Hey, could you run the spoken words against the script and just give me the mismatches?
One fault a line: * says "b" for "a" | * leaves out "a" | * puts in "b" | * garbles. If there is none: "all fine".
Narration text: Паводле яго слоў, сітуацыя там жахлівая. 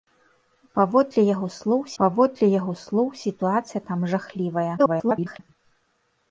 * puts in "паводле яго слоў"
* garbles